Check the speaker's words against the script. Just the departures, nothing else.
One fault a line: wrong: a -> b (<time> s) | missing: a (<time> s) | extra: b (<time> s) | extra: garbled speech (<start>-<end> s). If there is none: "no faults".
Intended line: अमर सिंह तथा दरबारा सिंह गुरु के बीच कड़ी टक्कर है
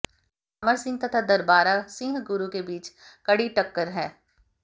no faults